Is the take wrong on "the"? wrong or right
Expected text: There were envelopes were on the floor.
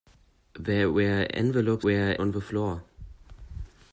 right